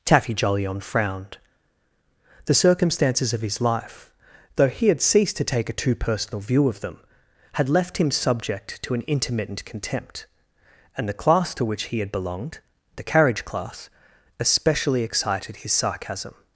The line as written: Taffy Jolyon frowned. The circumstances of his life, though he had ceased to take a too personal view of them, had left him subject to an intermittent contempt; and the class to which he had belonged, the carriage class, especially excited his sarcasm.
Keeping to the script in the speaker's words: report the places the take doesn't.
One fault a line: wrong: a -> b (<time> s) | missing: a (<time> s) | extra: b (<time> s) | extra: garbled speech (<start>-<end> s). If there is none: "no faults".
no faults